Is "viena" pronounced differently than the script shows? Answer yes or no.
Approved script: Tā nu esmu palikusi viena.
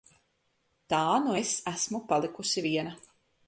no